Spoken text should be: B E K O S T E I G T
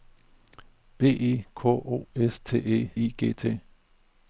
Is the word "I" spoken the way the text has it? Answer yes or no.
yes